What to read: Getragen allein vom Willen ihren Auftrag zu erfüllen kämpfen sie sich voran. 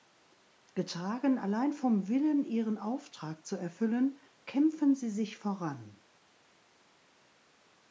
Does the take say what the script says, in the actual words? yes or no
yes